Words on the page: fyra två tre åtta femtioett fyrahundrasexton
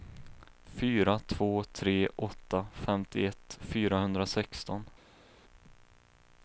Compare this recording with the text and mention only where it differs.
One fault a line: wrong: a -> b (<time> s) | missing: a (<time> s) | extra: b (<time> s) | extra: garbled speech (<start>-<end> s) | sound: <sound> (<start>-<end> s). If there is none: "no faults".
no faults